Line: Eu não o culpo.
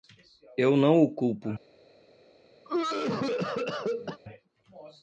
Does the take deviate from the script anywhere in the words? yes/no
no